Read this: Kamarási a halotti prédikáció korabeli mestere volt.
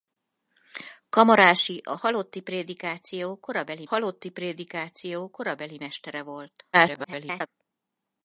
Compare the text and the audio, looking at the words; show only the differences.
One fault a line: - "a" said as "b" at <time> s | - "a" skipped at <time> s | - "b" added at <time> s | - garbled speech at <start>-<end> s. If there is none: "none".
- "halotti prédikáció korabeli" added at 3.8 s
- garbled speech at 6.7-7.5 s